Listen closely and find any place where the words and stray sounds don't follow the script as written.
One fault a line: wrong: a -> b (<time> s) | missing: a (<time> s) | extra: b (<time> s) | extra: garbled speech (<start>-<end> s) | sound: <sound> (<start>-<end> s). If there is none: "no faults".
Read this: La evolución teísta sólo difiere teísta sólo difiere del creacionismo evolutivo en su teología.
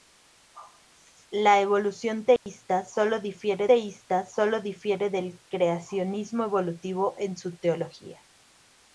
sound: dropout (2.4-2.5 s)